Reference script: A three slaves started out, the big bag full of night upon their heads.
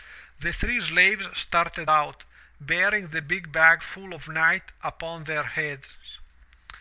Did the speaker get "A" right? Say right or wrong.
wrong